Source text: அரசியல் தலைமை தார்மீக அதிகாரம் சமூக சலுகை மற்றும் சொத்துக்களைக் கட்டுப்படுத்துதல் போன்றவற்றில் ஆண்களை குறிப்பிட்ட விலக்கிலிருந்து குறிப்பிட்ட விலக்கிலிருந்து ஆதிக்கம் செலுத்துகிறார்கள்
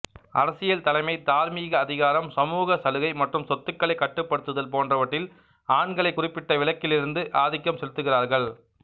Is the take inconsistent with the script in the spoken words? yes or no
yes